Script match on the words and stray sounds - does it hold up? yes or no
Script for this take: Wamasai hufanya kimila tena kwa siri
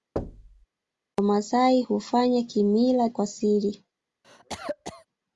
no